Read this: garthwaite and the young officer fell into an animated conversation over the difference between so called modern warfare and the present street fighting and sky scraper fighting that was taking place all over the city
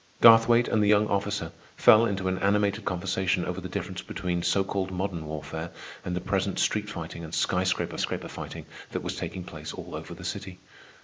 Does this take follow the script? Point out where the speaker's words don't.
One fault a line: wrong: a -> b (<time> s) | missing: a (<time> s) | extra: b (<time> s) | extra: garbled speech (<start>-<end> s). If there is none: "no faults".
extra: scraper (8.0 s)